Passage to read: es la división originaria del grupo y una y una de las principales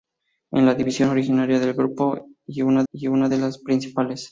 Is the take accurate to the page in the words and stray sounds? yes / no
yes